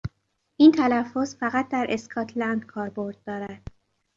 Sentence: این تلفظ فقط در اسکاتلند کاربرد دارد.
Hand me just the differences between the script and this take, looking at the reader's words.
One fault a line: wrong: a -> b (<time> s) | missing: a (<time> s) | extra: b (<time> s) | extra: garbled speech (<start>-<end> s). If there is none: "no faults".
no faults